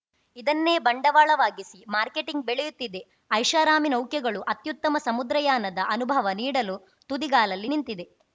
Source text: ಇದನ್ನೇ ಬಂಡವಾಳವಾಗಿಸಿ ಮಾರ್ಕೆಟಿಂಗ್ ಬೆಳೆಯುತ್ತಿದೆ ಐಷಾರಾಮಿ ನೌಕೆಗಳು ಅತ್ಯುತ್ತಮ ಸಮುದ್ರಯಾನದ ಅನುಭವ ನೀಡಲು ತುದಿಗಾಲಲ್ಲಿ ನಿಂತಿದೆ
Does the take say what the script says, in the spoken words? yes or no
yes